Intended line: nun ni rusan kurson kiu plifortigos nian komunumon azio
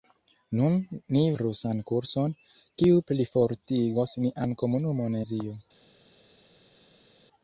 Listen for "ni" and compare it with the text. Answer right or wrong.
right